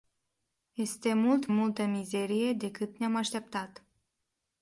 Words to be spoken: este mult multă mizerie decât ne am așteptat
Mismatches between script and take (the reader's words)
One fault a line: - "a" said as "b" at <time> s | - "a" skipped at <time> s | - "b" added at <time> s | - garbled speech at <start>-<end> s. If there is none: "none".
none